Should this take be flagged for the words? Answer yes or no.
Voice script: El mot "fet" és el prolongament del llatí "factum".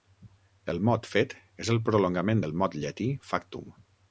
yes